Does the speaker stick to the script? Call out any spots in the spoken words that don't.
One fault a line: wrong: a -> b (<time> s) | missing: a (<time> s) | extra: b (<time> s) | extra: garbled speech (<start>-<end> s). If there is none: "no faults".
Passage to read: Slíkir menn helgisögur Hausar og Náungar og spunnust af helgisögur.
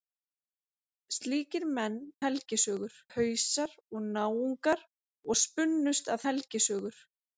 no faults